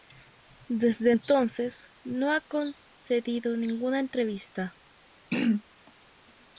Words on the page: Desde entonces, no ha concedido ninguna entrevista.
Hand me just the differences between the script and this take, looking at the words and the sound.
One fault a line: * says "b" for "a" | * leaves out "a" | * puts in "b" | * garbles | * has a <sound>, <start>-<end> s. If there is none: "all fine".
* has a throat clearing, 5.3-5.6 s